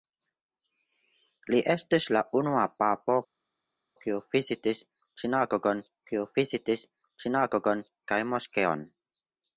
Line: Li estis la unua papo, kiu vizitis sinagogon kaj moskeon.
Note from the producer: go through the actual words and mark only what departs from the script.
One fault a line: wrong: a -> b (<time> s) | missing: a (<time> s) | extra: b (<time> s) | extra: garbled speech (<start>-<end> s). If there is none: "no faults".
extra: kiu vizitis sinagogon (6.1 s)